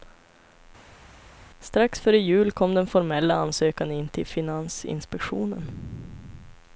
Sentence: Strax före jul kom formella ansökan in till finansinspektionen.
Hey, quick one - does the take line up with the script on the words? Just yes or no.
no